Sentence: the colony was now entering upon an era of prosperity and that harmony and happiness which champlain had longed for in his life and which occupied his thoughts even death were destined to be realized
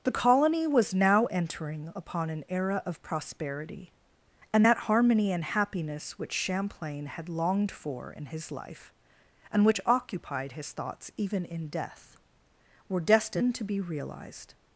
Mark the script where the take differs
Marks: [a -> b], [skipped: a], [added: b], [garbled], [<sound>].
the colony was now entering upon an era of prosperity and that harmony and happiness which champlain had longed for in his life and which occupied his thoughts even [added: in] death were destined to be realized